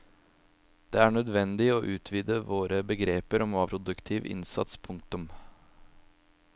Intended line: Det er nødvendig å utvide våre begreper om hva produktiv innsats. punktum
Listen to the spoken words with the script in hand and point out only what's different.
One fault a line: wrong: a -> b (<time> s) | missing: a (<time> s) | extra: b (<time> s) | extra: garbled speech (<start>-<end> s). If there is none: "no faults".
no faults